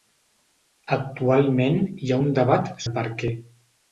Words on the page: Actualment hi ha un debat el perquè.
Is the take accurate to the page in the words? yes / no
yes